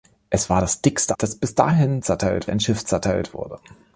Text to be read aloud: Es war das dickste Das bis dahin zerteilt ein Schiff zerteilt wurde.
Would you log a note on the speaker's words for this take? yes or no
no